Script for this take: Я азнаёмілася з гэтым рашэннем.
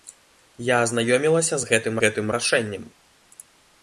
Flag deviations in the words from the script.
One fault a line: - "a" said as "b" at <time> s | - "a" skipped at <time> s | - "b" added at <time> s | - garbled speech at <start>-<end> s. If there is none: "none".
- "гэтым" added at 2.0 s